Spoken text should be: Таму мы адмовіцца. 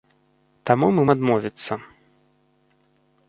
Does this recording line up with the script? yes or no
yes